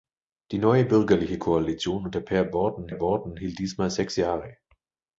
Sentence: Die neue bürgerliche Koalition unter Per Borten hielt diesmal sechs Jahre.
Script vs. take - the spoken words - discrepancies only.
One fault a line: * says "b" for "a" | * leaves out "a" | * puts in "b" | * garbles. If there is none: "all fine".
* puts in "Borten"